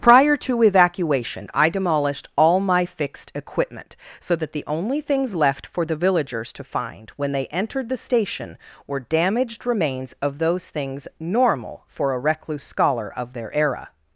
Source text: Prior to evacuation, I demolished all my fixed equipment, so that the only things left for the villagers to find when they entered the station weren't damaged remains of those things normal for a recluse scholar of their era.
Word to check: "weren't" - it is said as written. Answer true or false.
false